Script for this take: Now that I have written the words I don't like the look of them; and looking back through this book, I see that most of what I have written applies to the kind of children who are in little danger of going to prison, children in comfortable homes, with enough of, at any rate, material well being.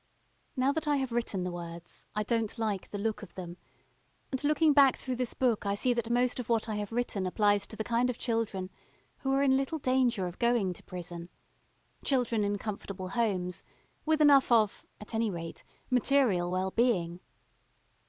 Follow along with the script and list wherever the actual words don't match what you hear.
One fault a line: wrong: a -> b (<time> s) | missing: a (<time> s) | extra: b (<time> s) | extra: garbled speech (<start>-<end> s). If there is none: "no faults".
no faults